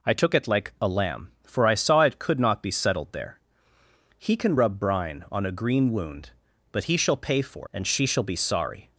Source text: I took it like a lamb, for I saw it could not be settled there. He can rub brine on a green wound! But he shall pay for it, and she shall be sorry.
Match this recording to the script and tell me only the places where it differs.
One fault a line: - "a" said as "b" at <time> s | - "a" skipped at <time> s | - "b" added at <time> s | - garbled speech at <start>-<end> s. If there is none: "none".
- "it" skipped at 7.7 s